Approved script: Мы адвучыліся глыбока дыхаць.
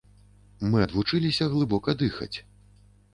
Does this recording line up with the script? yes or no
yes